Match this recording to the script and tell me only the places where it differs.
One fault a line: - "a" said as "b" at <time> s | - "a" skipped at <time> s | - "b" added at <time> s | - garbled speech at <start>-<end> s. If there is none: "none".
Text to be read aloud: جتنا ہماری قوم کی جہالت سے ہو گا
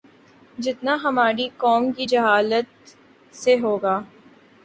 none